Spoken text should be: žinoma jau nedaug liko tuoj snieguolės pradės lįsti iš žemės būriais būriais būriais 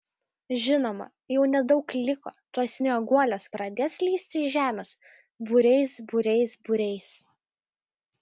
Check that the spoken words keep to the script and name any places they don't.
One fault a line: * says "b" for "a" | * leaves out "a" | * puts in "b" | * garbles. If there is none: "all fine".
all fine